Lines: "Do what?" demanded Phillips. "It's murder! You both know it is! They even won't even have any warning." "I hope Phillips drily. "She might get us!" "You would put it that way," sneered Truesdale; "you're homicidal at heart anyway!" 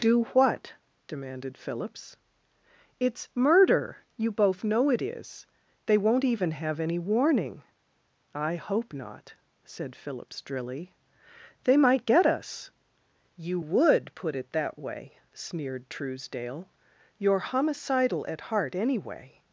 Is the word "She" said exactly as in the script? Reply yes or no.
no